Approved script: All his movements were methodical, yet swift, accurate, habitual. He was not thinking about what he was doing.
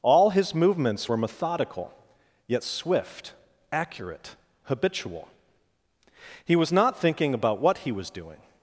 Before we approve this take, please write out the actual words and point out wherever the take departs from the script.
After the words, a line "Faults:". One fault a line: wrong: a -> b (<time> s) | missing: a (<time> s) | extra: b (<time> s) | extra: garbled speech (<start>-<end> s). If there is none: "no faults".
All his movements were methodical, yet swift, accurate, habitual. He was not thinking about what he was doing.
Faults:
no faults